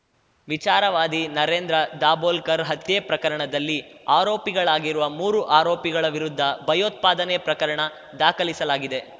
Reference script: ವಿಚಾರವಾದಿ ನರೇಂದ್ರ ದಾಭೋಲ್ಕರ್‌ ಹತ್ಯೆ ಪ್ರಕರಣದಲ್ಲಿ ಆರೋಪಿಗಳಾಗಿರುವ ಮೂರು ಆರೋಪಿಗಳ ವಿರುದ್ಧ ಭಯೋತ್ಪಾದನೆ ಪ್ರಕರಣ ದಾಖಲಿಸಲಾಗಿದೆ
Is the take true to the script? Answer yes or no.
yes